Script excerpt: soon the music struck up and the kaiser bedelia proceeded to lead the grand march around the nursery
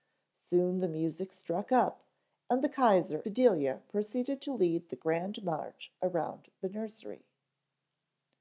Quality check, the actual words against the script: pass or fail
pass